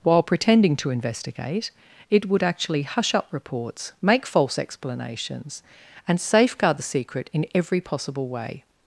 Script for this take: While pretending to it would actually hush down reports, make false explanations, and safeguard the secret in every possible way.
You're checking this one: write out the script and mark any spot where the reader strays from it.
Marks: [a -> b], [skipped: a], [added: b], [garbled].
While pretending to [added: investigate] it would actually hush [down -> up] reports, make false explanations, and safeguard the secret in every possible way.